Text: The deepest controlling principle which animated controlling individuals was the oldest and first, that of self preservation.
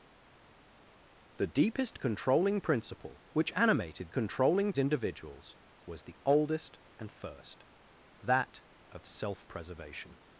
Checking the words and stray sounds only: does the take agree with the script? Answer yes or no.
yes